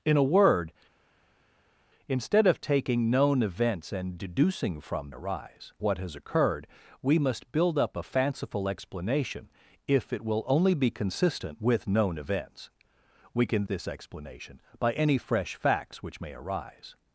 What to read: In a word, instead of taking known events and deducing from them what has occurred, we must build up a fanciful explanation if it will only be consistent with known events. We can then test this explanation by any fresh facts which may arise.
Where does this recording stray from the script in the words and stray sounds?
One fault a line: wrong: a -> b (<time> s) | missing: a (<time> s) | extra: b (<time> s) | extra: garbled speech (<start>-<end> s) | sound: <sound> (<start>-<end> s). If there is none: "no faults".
wrong: them -> arise (5.1 s)
missing: then test (13.7 s)